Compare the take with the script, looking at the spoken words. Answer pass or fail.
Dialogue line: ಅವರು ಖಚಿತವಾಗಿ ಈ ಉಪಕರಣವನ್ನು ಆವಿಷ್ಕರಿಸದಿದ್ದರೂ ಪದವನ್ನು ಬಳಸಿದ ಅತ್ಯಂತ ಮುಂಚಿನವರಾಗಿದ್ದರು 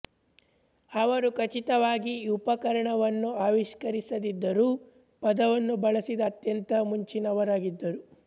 pass